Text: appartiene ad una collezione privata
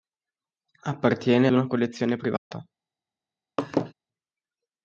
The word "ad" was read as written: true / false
false